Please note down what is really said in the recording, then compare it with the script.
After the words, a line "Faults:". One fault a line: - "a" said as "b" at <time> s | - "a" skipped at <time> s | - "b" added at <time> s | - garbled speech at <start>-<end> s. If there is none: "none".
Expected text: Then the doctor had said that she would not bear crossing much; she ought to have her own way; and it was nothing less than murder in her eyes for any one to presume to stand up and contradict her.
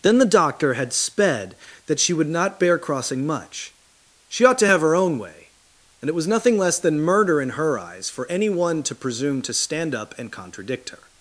Then the doctor had sped that she would not bear crossing much; she ought to have her own way; and it was nothing less than murder in her eyes for any one to presume to stand up and contradict her.
Faults:
- "said" said as "sped" at 0.9 s